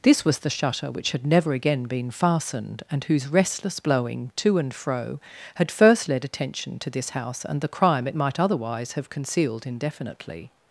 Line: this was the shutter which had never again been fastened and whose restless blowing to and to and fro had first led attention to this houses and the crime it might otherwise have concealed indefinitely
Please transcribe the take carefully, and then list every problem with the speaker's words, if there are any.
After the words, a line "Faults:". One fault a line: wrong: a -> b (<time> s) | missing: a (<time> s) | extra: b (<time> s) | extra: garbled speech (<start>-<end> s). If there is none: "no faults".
this was the shutter which had never again been fastened and whose restless blowing to and fro had first led attention to this house and the crime it might otherwise have concealed indefinitely
Faults:
missing: to and (4.7 s)
wrong: houses -> house (7.1 s)